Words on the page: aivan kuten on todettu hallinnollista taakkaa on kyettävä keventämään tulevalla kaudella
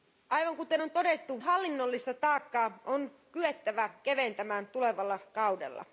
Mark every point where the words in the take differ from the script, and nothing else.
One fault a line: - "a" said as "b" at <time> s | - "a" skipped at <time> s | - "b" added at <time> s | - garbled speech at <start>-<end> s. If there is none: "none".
none